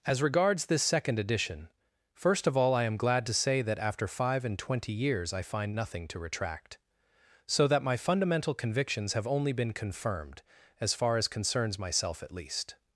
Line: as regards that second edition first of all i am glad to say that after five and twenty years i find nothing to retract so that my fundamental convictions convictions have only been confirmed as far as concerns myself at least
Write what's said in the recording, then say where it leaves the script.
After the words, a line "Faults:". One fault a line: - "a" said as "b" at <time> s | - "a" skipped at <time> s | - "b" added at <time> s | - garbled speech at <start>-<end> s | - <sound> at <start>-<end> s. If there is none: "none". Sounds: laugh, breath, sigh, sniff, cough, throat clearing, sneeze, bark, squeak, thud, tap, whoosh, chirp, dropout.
as regards this second edition first of all i am glad to say that after five and twenty years i find nothing to retract so that my fundamental convictions have only been confirmed as far as concerns myself at least
Faults:
- "that" said as "this" at 0.7 s
- "convictions" skipped at 9.1 s